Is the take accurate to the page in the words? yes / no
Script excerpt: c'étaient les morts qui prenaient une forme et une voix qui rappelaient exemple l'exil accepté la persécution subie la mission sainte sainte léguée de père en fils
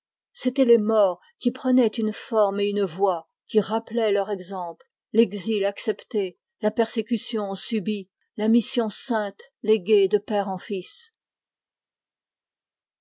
no